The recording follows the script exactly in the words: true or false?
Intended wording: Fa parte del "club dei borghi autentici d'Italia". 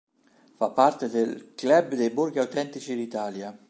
true